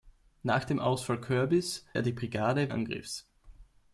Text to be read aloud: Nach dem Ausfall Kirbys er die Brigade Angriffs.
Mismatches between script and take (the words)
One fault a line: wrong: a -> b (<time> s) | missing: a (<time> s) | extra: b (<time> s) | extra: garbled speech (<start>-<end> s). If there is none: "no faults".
no faults